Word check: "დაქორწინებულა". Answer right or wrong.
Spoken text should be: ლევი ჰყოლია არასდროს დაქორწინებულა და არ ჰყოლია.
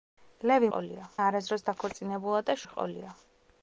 right